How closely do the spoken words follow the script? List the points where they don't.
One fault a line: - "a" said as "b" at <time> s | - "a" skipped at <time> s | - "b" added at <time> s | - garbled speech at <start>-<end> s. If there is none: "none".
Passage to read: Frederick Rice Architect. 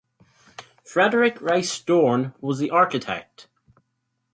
- "Dorn was the" added at 1.8 s